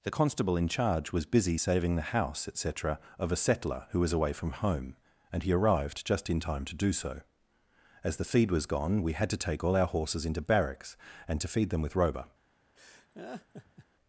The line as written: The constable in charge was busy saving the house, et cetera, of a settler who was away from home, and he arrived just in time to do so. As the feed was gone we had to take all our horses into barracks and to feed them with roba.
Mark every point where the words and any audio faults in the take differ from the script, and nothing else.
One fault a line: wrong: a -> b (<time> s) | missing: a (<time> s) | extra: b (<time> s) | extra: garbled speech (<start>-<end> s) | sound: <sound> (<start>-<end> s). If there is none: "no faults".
sound: laugh (12.8-13.9 s)